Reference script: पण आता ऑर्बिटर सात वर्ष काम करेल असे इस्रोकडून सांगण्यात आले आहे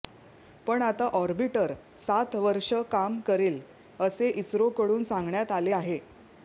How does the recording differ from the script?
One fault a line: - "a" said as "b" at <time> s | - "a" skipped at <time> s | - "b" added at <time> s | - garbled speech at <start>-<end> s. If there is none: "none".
none